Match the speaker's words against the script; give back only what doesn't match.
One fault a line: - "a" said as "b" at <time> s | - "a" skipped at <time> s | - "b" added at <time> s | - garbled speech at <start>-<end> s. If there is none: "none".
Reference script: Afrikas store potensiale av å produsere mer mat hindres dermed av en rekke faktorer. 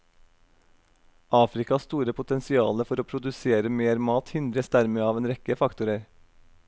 - "av" said as "for" at 2.9 s